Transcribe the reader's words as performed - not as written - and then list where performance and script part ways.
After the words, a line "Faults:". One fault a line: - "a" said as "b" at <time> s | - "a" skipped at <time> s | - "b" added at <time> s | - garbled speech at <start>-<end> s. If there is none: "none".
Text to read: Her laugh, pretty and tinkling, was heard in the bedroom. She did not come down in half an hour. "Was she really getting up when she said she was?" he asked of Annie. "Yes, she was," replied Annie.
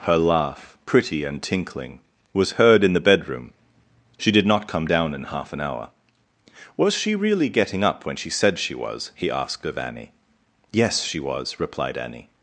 Her laugh, pretty and tinkling, was heard in the bedroom. She did not come down in half an hour. "Was she really getting up when she said she was?" he asked of Annie. "Yes, she was," replied Annie.
Faults:
none